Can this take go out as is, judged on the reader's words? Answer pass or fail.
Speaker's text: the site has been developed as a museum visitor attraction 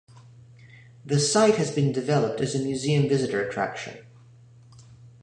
pass